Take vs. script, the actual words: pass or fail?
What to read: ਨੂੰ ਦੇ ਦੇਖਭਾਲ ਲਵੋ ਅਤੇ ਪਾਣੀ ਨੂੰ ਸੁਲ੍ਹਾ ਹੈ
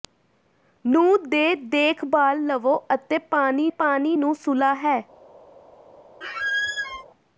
fail